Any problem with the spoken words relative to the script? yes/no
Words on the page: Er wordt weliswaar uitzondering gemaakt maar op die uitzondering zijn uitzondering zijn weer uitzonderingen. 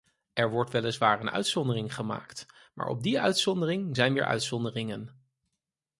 yes